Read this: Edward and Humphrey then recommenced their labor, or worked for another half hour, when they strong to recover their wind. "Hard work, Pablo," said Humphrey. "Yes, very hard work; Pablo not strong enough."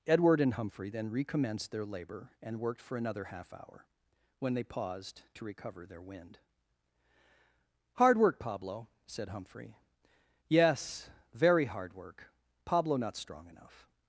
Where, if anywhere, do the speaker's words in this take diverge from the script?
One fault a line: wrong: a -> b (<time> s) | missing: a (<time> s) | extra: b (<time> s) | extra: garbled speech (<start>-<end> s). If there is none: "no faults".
wrong: or -> and (2.4 s)
wrong: strong -> paused (4.6 s)